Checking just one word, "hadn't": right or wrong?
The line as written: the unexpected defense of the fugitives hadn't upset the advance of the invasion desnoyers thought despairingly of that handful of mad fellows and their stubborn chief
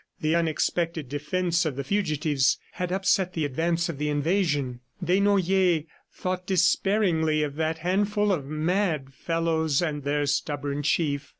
wrong